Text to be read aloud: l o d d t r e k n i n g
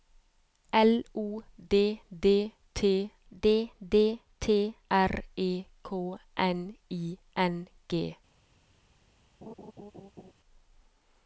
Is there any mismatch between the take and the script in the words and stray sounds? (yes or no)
yes